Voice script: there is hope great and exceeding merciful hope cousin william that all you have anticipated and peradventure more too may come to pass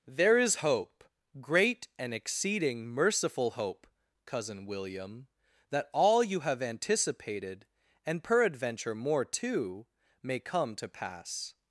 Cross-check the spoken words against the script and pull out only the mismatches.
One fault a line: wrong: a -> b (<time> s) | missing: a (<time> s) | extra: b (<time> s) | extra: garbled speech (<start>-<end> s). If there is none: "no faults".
no faults